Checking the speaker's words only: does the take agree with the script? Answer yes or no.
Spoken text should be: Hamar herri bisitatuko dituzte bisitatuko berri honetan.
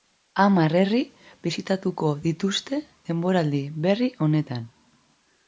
no